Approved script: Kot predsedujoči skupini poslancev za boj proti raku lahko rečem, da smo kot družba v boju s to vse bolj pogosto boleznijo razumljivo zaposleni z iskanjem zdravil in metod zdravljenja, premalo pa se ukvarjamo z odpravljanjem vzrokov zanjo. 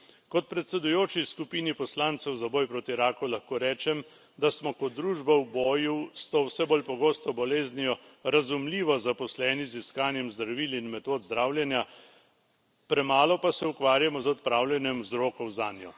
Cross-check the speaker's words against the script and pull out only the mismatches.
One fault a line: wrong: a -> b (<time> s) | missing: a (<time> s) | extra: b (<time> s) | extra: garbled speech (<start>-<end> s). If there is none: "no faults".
no faults